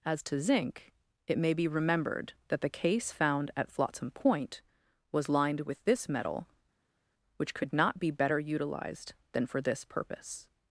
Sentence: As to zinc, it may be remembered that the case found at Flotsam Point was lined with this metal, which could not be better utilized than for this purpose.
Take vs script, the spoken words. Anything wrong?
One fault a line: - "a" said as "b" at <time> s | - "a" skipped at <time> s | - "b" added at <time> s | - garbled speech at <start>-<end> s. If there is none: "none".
none